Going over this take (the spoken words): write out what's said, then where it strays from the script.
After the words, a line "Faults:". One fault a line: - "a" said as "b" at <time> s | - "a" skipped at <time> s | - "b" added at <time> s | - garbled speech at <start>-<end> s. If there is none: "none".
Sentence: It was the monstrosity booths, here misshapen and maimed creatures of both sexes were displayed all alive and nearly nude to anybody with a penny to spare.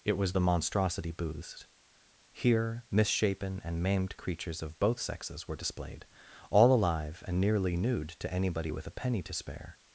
It was the monstrosity booths, here misshapen and maimed creatures of both sexes were displayed all alive and nearly nude to anybody with a penny to spare.
Faults:
none